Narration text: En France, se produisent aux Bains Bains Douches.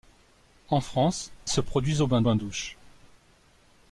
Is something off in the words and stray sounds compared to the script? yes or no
no